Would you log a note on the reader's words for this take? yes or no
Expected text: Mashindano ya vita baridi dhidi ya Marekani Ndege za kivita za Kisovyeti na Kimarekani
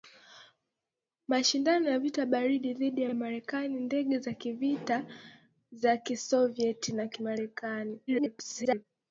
yes